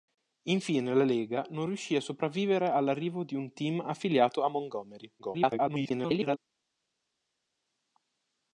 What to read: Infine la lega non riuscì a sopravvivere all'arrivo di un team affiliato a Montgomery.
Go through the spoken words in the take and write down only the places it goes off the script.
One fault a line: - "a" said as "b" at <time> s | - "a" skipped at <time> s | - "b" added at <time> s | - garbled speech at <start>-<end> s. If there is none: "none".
- garbled speech at 5.2-6.4 s